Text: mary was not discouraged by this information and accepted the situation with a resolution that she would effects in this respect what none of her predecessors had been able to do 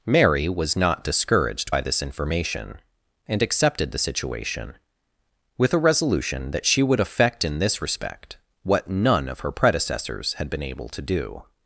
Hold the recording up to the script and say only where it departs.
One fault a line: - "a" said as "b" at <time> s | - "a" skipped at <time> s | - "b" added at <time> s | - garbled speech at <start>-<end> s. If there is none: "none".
- "effects" said as "effect" at 7.0 s